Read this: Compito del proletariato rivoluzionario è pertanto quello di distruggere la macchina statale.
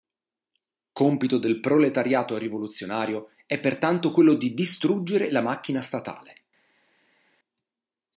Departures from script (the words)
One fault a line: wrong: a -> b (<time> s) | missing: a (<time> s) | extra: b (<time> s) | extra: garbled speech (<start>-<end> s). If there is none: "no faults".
no faults